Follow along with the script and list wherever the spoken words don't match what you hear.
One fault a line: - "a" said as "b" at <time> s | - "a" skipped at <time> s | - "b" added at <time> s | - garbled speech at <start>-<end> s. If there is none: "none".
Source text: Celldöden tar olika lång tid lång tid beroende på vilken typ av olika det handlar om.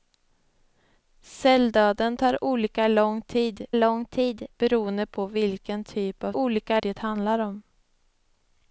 none